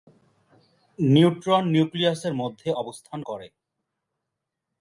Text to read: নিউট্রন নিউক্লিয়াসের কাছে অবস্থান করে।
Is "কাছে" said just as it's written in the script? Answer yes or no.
no